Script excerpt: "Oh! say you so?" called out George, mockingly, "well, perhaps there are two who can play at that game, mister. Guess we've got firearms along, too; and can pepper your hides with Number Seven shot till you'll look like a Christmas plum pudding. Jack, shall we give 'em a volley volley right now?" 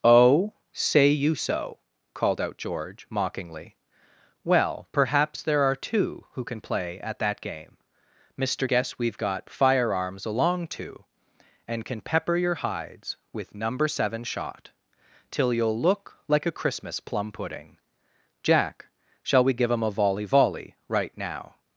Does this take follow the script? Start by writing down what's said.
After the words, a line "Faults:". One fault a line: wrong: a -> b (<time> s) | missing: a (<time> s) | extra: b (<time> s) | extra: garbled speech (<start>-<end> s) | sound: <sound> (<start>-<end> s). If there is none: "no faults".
"Oh! say you so?" called out George, mockingly, "well, perhaps there are two who can play at that game, mister. Guess we've got firearms along, too; and can pepper your hides with Number Seven shot till you'll look like a Christmas plum pudding. Jack, shall we give 'em a volley volley right now?"
Faults:
no faults